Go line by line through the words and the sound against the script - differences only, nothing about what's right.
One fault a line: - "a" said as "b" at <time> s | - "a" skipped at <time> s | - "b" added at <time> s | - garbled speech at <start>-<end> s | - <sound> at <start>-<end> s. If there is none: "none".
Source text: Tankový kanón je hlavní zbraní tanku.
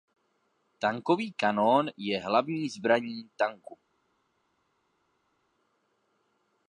none